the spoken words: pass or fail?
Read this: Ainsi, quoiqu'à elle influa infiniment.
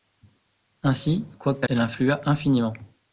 pass